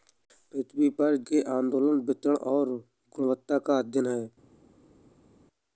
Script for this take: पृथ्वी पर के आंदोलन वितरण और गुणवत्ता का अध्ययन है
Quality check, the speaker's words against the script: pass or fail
pass